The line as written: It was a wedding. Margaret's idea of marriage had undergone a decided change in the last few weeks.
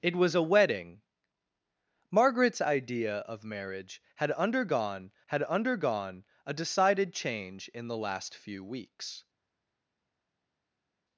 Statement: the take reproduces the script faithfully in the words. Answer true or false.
false